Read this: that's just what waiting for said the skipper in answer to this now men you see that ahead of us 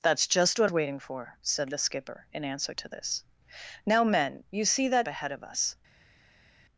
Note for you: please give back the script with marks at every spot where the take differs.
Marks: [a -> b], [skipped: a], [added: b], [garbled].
that's just what waiting for said the skipper in answer to this now men you see that ahead of us